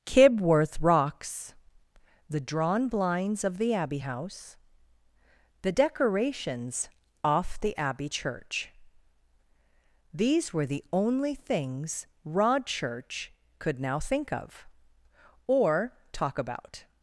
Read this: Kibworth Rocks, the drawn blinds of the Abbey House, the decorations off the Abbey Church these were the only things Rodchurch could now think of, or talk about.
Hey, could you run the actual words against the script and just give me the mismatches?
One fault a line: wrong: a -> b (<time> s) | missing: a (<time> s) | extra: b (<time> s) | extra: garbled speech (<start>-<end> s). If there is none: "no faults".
no faults